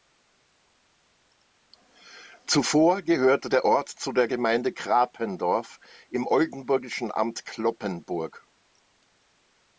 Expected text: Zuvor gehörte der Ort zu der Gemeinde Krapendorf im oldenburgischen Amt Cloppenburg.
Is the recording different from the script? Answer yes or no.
no